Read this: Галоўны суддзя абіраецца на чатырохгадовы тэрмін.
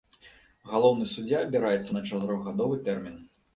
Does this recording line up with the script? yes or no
yes